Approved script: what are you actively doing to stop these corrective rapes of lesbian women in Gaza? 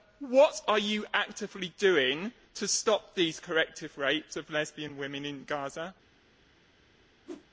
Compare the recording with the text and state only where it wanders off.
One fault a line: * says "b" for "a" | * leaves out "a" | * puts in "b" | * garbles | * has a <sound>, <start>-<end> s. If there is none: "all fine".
* has a whoosh, 7.3-7.5 s